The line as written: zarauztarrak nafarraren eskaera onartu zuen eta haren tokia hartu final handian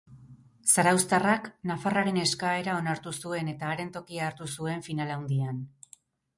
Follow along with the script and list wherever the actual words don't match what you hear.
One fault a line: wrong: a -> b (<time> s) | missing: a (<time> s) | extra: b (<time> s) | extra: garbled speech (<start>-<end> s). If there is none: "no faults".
extra: zuen (4.6 s)